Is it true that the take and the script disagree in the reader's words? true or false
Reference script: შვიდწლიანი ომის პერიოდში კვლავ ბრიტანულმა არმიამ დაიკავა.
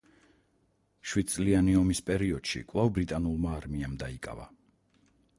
false